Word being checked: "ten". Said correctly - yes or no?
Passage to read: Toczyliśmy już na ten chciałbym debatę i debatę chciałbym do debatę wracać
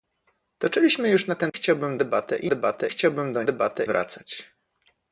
yes